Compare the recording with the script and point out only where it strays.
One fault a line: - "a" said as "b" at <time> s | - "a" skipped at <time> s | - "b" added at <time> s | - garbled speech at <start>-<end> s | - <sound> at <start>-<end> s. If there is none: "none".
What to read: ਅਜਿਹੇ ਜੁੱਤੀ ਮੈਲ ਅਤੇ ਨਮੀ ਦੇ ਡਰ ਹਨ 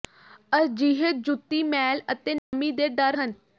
- dropout at 2.4-2.5 s